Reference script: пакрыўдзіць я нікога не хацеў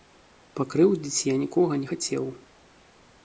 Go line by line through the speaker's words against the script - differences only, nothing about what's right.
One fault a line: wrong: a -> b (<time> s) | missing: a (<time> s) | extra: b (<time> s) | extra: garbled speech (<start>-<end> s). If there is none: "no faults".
no faults